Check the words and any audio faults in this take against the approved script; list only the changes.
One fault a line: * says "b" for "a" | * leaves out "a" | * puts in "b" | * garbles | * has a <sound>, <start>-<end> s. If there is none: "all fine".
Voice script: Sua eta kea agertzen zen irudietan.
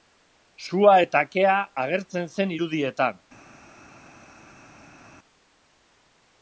all fine